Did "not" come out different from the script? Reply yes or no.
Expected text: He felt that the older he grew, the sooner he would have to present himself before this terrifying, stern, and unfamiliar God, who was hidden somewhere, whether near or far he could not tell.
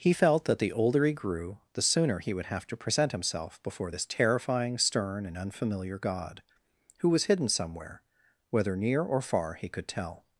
yes